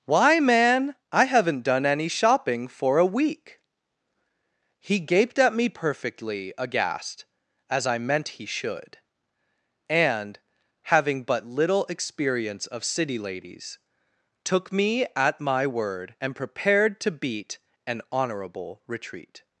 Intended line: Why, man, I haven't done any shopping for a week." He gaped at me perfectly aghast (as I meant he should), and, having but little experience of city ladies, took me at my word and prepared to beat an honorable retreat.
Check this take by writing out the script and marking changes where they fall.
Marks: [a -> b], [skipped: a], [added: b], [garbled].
Why, man, I haven't done any shopping for a week." He gaped at me perfectly aghast (as I meant he should), and, having but little experience of city ladies, took me at my word and prepared to beat an honorable retreat.